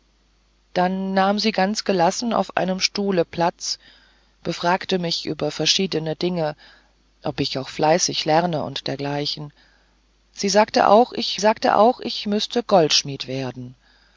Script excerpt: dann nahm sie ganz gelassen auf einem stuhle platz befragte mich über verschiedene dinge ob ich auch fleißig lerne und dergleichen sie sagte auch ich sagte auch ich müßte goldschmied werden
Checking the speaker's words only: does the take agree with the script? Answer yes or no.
yes